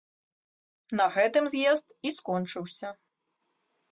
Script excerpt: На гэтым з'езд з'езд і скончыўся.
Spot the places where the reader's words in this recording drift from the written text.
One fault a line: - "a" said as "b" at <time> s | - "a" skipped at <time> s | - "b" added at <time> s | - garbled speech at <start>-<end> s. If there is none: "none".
- "з'езд" skipped at 1.9 s